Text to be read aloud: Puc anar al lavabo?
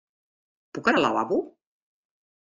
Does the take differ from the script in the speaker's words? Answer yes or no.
no